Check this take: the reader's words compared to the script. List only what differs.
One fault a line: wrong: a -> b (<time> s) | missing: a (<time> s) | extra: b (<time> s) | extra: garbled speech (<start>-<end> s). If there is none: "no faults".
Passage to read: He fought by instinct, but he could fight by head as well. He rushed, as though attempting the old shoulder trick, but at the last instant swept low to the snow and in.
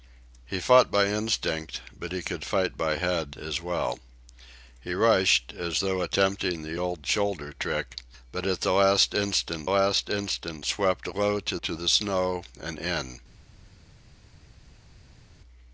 extra: last instant (9.7 s)
extra: to (11.6 s)